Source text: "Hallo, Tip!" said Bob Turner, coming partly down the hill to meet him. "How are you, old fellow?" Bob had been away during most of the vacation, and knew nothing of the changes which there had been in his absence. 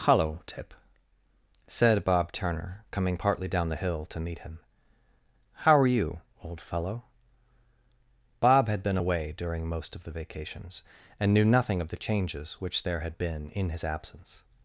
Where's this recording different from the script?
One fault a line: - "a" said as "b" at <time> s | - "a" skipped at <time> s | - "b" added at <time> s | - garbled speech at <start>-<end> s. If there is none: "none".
- "vacation" said as "vacations" at 10.1 s